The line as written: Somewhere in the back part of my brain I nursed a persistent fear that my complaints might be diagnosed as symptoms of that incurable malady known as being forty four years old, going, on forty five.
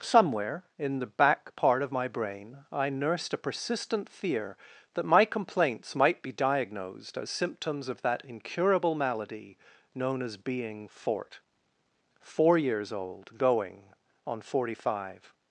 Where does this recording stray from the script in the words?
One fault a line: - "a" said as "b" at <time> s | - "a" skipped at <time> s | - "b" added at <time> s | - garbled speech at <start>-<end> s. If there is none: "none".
- "forty" said as "fort" at 10.9 s